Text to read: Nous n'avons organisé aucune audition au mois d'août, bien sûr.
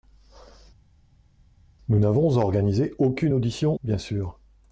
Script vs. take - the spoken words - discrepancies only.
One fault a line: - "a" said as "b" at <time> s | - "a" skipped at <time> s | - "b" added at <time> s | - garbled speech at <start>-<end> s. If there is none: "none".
- "au mois d'août" skipped at 3.7 s